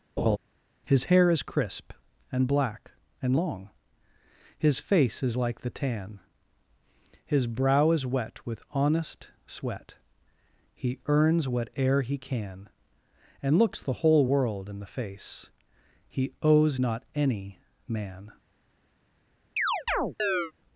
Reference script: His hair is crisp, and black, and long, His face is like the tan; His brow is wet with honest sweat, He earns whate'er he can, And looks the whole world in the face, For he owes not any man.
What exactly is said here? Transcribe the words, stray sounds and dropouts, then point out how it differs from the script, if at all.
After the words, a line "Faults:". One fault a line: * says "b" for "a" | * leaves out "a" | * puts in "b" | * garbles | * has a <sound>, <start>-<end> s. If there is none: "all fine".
His hair is crisp, and black, and long, His face is like the tan; His brow is wet with honest sweat, He earns whate'er he can, And looks the whole world in the face, he owes not any man.
Faults:
* has a laugh, 0.2-0.4 s
* leaves out "For"
* has a chirp, 19.6-20.5 s